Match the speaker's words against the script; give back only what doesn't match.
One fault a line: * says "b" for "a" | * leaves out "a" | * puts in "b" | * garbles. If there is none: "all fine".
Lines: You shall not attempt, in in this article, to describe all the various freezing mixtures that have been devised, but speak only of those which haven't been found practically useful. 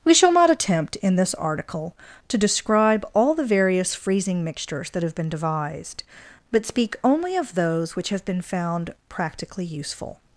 * says "We" for "You"
* leaves out "in"
* says "have" for "haven't"